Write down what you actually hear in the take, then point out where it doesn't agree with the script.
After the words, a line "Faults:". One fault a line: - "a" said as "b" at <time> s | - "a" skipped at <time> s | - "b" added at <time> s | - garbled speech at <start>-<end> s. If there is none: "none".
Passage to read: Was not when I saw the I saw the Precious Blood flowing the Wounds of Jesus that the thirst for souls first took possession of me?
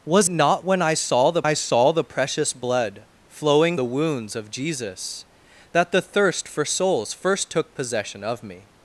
Was not when I saw the I saw the Precious Blood flowing the Wounds of Jesus that the thirst for souls first took possession of me?
Faults:
none